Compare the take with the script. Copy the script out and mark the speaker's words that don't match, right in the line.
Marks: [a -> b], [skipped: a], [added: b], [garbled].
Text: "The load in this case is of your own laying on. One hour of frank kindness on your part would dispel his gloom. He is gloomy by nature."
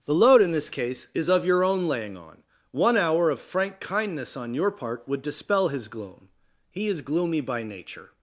"The load in this case is of your own laying on. One hour of frank kindness on your part would dispel his gloom. He is gloomy by nature."